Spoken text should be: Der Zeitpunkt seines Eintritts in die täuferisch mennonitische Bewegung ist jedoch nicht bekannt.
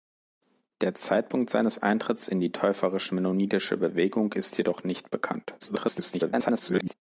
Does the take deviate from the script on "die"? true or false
false